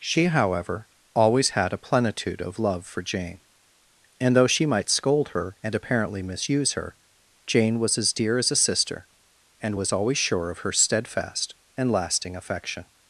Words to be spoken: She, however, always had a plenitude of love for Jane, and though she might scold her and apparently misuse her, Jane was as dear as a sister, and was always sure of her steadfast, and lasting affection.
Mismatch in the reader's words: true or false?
false